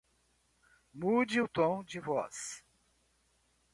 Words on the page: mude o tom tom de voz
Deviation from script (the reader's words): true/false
true